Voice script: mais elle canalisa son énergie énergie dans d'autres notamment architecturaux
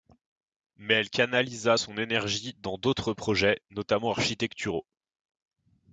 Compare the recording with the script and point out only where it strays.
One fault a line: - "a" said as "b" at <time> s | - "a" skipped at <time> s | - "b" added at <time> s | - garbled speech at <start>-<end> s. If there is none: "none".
- "énergie" skipped at 2.5 s
- "projets" added at 3.1 s